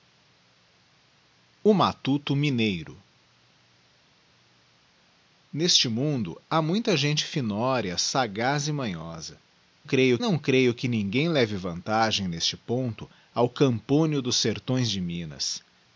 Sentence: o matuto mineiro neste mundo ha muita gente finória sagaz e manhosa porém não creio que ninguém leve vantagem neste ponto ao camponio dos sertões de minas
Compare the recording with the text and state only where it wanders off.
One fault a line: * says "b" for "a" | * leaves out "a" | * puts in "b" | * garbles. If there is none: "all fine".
* says "creio" for "porém"